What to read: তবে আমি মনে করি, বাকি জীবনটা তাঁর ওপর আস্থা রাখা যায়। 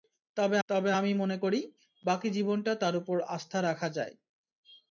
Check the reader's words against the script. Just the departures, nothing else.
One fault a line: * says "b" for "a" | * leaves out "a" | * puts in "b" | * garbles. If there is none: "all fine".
* puts in "তবে"